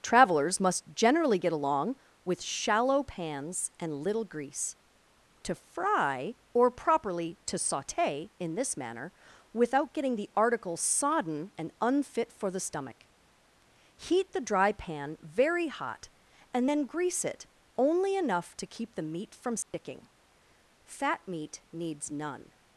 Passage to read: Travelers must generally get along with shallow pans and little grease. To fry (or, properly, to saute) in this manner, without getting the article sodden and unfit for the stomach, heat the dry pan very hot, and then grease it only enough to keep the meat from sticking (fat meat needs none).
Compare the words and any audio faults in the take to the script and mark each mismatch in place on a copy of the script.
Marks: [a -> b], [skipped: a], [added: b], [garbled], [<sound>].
Travelers must generally get along with shallow pans and little grease. To fry (or, properly, to saute) in this manner, without getting the article sodden and unfit for the stomach, heat the dry pan very hot, and then grease it only enough to keep the meat from sticking [dropout] (fat meat needs none).